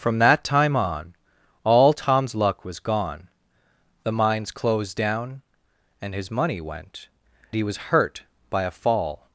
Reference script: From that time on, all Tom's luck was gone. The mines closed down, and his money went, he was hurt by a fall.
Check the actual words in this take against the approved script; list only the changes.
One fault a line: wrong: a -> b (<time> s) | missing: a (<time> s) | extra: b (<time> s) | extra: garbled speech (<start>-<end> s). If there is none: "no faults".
no faults